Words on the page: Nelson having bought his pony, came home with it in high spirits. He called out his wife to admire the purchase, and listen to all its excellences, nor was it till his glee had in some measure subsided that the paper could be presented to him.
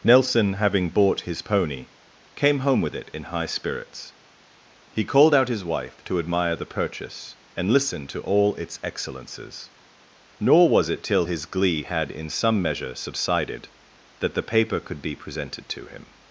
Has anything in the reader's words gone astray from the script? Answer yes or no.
no